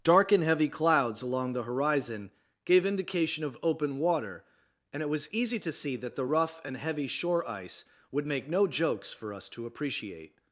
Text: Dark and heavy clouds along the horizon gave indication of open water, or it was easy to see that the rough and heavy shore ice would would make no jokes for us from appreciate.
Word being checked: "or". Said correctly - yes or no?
no